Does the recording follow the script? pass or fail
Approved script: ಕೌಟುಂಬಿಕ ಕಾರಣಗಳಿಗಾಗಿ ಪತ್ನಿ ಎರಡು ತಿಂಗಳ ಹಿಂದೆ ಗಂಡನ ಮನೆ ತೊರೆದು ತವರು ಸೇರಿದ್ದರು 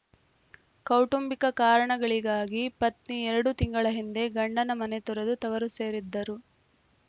pass